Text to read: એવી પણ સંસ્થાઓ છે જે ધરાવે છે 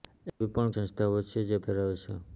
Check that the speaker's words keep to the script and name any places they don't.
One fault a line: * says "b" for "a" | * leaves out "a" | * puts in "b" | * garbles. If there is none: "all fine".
all fine